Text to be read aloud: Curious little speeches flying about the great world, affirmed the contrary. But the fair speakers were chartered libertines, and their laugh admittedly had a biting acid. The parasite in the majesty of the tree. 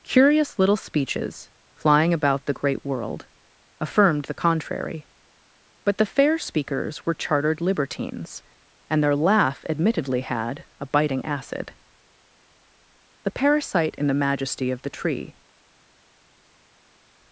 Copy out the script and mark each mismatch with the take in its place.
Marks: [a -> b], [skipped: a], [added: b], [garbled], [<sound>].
Curious little speeches flying about the great world, affirmed the contrary. But the fair speakers were chartered libertines, and their laugh admittedly had a biting acid. The parasite in the majesty of the tree.